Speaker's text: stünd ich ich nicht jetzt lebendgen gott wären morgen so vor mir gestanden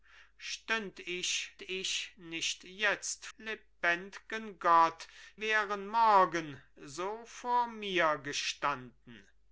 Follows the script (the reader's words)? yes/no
yes